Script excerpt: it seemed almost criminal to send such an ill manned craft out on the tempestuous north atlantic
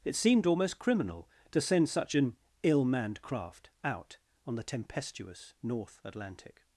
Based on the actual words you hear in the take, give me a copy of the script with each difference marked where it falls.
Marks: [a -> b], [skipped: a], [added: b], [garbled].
it seemed almost criminal to send such an ill manned craft out on the tempestuous north atlantic